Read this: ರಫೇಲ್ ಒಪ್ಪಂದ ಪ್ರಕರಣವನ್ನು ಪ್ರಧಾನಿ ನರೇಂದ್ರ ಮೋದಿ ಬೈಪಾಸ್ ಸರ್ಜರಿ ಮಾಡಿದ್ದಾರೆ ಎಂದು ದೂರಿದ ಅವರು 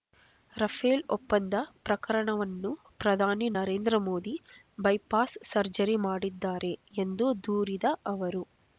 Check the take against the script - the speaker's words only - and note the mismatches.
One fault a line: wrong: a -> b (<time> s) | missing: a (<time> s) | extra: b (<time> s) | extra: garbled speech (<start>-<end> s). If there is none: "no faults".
no faults